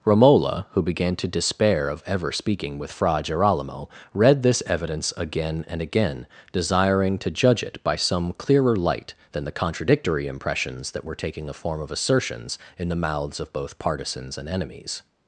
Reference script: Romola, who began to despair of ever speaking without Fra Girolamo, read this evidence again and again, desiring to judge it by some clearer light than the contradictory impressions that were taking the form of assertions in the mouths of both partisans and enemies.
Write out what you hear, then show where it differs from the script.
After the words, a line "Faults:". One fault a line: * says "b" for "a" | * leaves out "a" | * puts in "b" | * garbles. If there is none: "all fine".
Romola, who began to despair of ever speaking with Fra Girolamo, read this evidence again and again, desiring to judge it by some clearer light than the contradictory impressions that were taking the form of assertions in the mouths of both partisans and enemies.
Faults:
* says "with" for "without"